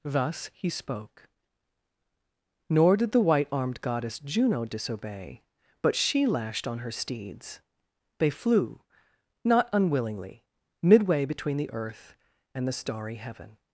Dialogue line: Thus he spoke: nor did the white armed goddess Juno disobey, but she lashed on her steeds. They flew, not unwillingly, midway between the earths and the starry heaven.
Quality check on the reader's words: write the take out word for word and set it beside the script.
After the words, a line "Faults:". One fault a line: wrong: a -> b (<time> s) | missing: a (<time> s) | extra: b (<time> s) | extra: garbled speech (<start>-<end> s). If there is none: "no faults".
Thus he spoke: nor did the white armed goddess Juno disobey, but she lashed on her steeds. They flew, not unwillingly, midway between the earth and the starry heaven.
Faults:
wrong: earths -> earth (11.7 s)